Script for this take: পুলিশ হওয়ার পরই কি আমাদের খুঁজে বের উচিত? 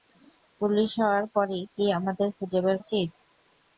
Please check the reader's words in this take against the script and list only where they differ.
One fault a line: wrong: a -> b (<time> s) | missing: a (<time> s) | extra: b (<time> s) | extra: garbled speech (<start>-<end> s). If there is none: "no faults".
no faults